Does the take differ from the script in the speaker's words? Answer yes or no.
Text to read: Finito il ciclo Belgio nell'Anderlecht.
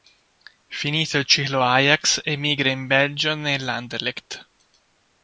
yes